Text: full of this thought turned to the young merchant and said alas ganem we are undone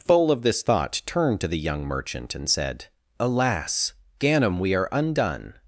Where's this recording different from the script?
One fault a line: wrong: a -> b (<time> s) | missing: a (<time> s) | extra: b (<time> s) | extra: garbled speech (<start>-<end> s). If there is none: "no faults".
no faults